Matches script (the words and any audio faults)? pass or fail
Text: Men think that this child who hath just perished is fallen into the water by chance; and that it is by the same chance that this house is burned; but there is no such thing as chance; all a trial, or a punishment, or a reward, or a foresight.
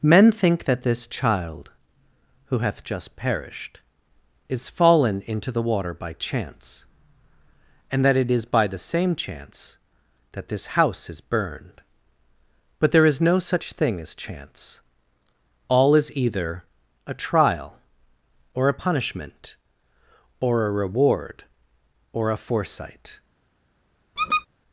fail